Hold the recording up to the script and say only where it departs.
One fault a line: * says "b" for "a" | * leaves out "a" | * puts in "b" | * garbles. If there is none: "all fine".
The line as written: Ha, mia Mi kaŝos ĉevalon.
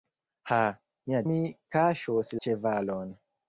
all fine